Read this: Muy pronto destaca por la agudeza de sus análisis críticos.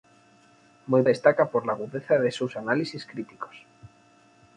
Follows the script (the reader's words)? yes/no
no